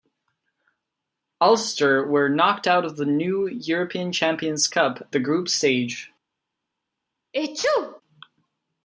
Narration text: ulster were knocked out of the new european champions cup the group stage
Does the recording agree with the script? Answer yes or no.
yes